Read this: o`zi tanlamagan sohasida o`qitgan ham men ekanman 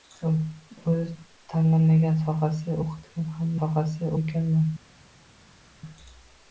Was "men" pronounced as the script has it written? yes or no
no